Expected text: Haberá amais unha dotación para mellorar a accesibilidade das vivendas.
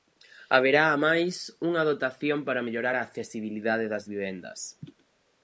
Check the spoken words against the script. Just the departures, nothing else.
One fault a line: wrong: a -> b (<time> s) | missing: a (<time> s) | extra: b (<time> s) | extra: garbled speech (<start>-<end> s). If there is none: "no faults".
no faults